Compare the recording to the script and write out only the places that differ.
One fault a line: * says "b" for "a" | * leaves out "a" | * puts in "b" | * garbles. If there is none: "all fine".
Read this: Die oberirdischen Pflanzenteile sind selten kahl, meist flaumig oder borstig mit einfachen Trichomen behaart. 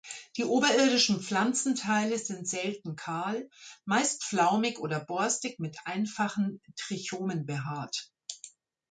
all fine